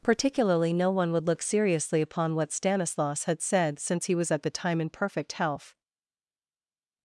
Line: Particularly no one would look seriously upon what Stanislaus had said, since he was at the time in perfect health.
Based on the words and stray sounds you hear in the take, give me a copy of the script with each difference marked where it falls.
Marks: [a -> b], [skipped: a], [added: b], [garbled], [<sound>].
Particularly no one would look seriously upon what Stanislaus had said, since he was at the time in perfect health.